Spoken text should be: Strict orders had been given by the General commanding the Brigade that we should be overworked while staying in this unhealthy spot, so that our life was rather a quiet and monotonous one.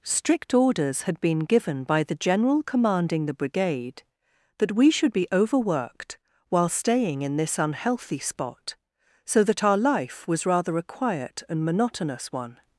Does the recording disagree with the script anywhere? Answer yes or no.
no